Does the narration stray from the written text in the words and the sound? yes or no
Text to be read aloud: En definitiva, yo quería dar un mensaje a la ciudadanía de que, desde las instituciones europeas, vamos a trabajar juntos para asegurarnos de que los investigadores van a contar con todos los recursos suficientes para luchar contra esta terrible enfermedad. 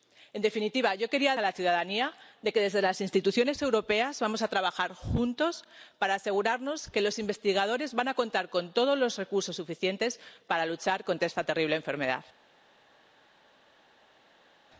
yes